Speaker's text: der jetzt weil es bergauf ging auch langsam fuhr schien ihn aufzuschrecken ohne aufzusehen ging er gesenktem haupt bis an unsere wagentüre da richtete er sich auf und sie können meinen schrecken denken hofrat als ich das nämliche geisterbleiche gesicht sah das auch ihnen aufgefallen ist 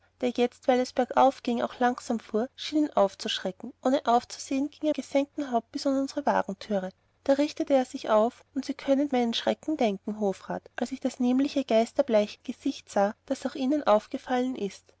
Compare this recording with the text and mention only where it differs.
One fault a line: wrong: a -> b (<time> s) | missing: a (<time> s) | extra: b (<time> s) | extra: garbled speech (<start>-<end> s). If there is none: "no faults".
no faults